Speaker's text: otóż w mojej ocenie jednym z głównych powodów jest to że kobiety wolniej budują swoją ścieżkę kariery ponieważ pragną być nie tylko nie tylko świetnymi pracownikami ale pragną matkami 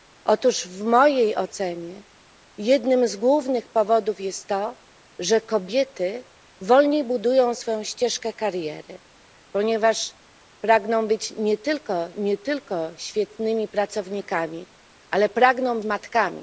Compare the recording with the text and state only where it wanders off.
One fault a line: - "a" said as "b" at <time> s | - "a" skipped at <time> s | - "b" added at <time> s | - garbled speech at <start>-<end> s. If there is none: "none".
none